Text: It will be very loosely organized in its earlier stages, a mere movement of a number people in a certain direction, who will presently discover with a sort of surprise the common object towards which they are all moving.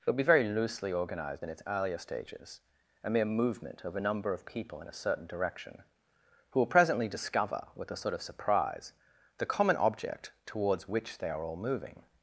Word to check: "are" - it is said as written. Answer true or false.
true